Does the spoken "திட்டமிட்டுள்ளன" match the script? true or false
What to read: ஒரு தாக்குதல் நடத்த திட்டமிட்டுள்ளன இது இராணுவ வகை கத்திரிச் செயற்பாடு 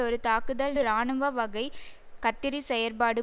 false